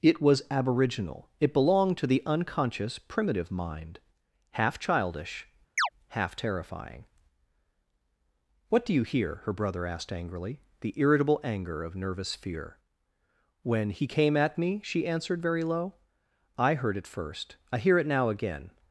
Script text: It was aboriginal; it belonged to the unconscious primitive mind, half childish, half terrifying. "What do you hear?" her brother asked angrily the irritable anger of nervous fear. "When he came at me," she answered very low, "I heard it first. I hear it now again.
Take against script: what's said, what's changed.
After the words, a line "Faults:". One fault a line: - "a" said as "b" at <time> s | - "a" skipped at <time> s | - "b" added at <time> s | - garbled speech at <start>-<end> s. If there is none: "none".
It was aboriginal; it belonged to the unconscious primitive mind, half childish, half terrifying. "What do you hear?" her brother asked angrily the irritable anger of nervous fear. "When he came at me," she answered very low, "I heard it first. I hear it now again.
Faults:
none